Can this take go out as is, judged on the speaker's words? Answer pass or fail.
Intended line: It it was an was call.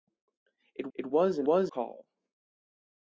pass